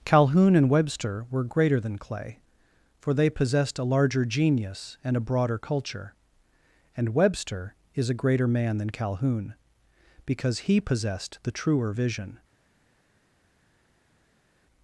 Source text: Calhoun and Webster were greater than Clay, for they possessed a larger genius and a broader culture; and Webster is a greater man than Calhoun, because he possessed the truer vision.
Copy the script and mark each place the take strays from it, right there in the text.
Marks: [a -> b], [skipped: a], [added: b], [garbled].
Calhoun and Webster were greater than Clay, for they possessed a larger genius and a broader culture; and Webster is a greater man than Calhoun, because he possessed the truer vision.